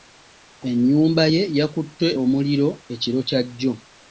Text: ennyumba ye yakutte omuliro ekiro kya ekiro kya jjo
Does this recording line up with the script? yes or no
no